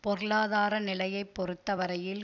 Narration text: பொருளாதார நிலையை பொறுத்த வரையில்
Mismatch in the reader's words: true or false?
false